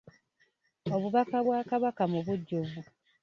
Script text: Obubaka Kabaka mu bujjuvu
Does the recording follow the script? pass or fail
fail